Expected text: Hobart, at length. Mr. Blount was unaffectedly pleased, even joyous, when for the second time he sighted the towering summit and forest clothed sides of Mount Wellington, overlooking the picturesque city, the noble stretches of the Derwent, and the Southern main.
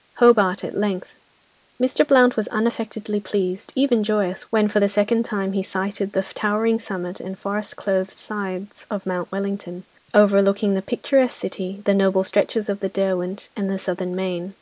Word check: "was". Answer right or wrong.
right